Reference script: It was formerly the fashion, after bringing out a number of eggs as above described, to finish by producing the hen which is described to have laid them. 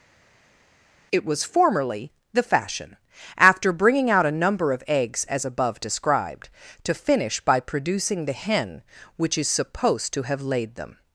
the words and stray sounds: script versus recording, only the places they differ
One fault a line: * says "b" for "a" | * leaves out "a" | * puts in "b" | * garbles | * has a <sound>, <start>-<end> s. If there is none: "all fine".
* says "supposed" for "described"